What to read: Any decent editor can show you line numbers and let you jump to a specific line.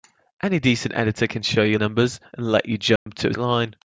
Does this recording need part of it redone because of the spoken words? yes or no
yes